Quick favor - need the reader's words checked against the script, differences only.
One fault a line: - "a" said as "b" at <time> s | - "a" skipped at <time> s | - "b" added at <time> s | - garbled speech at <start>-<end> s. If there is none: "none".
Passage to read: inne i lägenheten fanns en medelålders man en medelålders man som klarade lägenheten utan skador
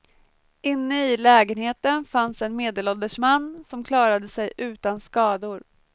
- "en medelålders man" skipped at 3.6 s
- "lägenheten" said as "sig" at 4.3 s